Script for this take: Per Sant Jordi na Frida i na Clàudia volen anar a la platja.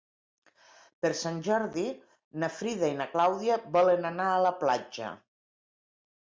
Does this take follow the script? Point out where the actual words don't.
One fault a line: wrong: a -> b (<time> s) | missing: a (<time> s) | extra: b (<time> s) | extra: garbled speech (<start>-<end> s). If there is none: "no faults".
no faults